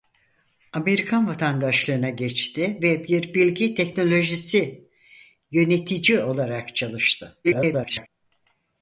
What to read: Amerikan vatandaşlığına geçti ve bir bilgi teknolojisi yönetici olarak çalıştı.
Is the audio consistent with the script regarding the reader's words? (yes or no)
no